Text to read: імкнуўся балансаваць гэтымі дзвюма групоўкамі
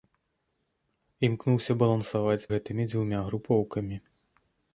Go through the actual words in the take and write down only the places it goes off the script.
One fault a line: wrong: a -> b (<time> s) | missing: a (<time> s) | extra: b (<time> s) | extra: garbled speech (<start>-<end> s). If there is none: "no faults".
no faults